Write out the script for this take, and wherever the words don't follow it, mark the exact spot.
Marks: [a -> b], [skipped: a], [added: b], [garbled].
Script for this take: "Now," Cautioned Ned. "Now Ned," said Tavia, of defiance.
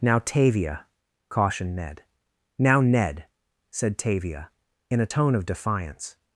"Now," [added: Tavia] Cautioned Ned. "Now Ned," said Tavia, [added: in a tone] of defiance.